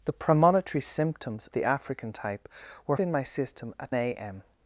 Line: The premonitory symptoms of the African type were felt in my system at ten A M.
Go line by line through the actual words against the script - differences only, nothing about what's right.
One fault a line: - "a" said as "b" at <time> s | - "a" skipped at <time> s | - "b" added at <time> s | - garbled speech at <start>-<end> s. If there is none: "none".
- "of" skipped at 1.5 s
- "felt" skipped at 3.0 s
- "ten" skipped at 3.9 s